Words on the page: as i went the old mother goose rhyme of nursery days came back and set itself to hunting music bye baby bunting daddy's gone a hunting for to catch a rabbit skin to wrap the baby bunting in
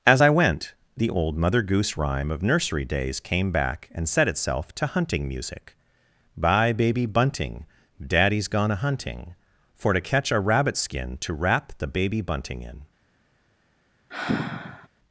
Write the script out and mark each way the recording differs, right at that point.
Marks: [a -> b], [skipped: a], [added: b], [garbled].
as i went the old mother goose rhyme of nursery days came back and set itself to hunting music bye baby bunting daddy's gone a hunting for to catch a rabbit skin to wrap the baby bunting in